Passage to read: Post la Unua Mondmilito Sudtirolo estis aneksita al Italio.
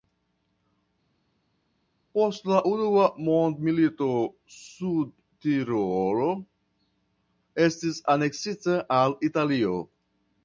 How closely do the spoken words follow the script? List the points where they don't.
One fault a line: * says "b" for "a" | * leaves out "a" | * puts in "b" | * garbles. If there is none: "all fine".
all fine